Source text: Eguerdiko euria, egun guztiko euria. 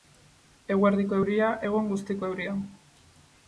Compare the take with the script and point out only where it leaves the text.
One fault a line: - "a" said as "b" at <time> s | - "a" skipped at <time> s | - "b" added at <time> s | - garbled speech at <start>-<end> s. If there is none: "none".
none